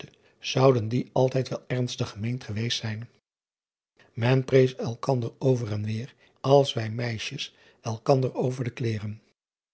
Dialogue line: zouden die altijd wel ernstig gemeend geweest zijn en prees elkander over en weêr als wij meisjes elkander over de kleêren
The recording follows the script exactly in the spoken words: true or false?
true